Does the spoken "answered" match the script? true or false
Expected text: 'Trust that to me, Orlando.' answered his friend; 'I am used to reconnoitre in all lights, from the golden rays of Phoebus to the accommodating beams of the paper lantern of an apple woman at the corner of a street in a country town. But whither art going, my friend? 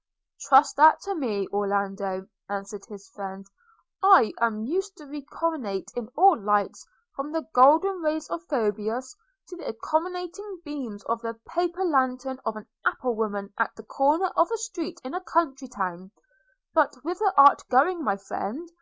true